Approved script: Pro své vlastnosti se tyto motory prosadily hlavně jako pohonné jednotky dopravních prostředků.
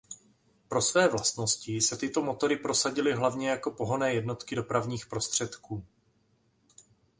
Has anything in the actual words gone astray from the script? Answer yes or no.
no